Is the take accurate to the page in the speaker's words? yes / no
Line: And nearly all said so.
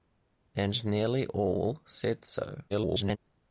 no